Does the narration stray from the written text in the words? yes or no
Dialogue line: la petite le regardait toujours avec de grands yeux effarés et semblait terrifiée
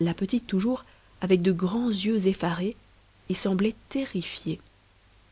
yes